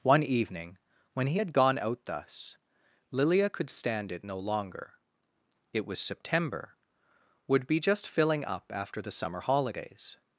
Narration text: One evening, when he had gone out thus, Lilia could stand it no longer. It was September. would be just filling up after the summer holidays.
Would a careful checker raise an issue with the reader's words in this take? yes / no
no